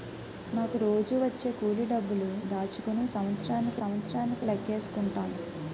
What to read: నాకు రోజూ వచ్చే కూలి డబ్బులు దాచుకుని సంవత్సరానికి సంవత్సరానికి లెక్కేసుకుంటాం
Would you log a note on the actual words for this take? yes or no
no